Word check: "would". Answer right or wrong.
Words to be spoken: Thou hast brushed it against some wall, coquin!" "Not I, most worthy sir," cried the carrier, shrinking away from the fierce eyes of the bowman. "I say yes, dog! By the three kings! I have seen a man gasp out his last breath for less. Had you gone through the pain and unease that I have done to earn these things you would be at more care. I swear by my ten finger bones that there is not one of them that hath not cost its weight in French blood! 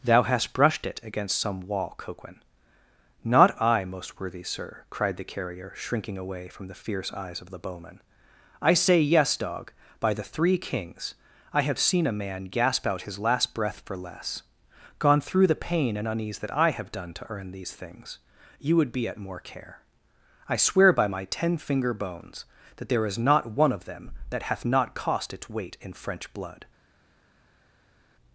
right